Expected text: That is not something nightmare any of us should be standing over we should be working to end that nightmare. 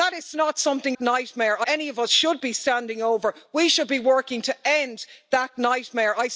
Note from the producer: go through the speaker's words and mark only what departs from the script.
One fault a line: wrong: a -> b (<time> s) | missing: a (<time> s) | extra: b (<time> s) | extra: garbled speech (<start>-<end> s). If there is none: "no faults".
no faults